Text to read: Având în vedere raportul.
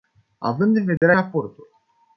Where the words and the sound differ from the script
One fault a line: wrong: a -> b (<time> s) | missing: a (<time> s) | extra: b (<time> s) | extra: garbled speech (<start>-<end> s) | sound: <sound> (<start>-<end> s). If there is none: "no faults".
sound: dropout (1.0-1.0 s)